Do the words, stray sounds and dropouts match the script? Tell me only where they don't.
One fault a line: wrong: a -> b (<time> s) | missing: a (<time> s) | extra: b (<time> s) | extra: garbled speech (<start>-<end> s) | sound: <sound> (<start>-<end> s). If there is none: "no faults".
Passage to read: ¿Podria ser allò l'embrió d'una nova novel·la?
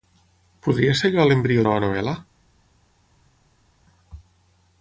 missing: d'una (1.7 s)